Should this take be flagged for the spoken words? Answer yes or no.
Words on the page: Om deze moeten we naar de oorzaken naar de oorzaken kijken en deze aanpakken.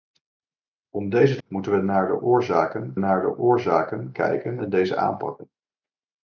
no